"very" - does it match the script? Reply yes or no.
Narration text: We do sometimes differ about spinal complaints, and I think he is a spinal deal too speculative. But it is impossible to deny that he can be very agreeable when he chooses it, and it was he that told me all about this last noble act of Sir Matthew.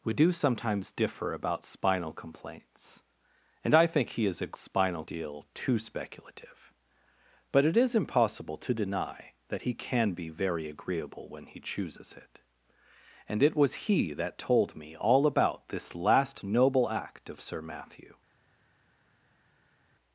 yes